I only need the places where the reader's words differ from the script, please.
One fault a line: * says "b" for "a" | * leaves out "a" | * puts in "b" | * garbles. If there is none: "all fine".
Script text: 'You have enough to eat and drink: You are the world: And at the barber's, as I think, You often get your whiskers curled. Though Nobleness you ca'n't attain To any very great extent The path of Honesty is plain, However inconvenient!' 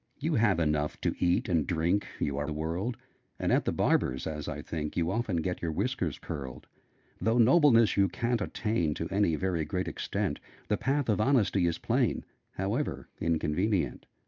all fine